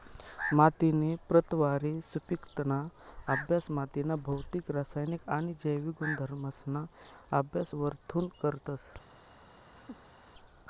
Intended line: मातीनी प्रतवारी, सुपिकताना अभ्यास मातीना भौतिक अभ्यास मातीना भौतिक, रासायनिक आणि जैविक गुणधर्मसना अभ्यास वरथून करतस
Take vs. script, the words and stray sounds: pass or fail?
fail